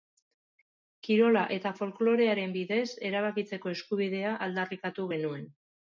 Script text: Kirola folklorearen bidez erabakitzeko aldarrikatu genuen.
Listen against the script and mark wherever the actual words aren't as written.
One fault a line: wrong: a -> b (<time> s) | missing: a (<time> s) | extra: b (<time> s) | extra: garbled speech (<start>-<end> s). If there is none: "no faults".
extra: eta (1.6 s)
extra: eskubidea (3.8 s)